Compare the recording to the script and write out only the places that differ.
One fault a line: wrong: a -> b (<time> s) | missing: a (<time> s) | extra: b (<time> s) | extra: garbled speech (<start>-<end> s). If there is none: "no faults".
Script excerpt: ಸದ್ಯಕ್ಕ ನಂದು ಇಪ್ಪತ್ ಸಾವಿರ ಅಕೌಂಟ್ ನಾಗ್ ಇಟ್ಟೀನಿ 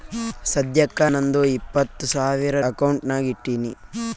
no faults